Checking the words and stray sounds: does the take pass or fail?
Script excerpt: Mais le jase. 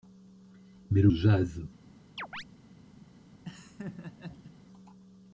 fail